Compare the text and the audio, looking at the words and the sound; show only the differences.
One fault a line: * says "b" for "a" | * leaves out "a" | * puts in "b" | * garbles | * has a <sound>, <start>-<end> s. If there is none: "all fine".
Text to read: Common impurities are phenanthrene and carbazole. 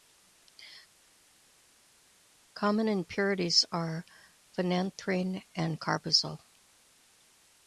all fine